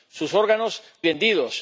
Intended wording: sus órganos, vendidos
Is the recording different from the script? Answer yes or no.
no